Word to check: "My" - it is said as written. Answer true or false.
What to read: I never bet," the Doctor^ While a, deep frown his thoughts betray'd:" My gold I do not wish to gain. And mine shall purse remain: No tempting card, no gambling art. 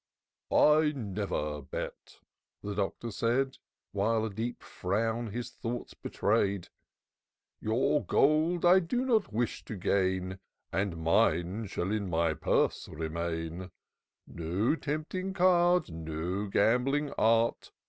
false